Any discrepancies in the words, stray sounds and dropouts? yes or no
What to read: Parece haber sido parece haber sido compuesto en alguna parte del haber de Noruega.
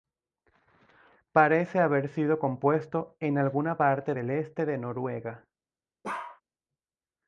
yes